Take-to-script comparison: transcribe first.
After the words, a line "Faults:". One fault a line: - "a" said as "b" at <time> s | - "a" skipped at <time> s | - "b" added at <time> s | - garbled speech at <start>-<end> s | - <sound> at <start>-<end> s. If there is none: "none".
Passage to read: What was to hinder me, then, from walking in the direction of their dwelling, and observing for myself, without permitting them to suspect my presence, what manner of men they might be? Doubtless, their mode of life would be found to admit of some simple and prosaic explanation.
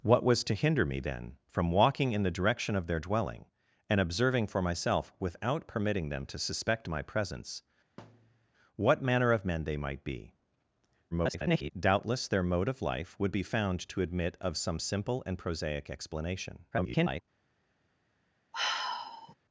What was to hinder me, then, from walking in the direction of their dwelling, and observing for myself, without permitting them to suspect my presence, what manner of men they might be? [garbled] Doubtless, their mode of life would be found to admit of some simple and prosaic explanation. [garbled]
Faults:
- thud at 8.0-8.5 s
- garbled speech at 11.1-11.7 s
- garbled speech at 16.7-17.2 s
- sigh at 18.5-19.3 s